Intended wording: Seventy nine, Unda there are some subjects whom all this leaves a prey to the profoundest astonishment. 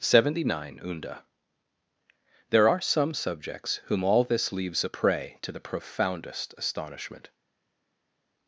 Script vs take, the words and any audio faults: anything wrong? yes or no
no